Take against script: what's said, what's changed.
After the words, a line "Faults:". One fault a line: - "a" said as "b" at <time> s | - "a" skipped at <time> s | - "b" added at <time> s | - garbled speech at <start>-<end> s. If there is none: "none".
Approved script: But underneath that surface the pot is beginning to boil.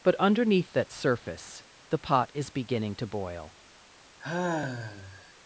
But underneath that surface the pot is beginning to boil.
Faults:
none